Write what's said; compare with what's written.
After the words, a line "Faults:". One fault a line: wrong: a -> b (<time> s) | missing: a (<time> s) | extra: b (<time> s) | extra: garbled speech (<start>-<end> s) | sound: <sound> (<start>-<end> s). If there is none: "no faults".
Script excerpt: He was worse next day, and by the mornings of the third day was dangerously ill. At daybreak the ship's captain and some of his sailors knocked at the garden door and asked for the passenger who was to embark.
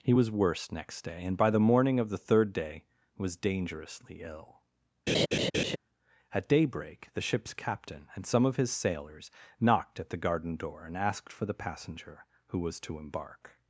He was worse next day, and by the morning of the third day was dangerously ill. At daybreak the ship's captain and some of his sailors knocked at the garden door and asked for the passenger who was to embark.
Faults:
wrong: mornings -> morning (1.6 s)
sound: laugh (5.1-5.8 s)